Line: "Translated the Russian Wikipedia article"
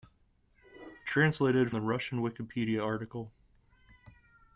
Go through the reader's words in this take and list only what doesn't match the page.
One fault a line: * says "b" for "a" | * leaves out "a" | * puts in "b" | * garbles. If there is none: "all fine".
all fine